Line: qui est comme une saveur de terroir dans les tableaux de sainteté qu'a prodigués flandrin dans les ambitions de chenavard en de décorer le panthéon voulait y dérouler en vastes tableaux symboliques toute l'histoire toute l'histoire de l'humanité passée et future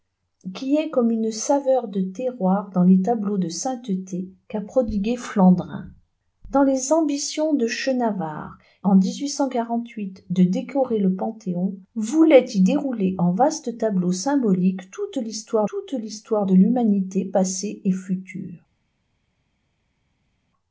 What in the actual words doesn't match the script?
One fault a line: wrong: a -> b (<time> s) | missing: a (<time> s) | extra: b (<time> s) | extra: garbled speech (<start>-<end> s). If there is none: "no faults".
no faults